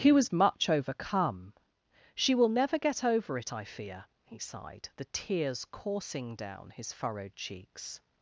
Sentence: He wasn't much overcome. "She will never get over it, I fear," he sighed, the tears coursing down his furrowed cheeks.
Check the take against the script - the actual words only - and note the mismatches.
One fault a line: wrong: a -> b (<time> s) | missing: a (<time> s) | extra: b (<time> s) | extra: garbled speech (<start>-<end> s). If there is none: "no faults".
wrong: wasn't -> was (0.1 s)